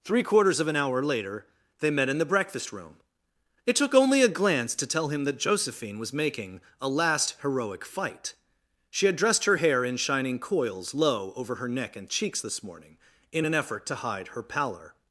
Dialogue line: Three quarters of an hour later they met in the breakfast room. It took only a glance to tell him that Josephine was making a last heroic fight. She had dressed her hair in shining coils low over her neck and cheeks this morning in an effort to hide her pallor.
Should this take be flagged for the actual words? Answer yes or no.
no